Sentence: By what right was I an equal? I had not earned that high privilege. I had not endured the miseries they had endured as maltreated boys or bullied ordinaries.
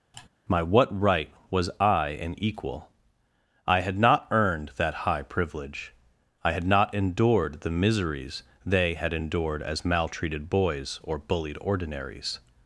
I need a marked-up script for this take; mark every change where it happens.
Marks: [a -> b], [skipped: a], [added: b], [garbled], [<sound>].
[sigh] [By -> My] what right was I an equal? I had not earned that high privilege. I had not endured the miseries they had endured as maltreated boys or bullied ordinaries.